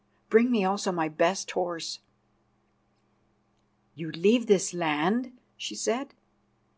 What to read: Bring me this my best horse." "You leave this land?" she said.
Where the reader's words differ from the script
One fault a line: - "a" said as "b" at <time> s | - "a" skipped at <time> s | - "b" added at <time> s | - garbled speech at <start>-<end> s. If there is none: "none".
- "this" said as "also" at 0.7 s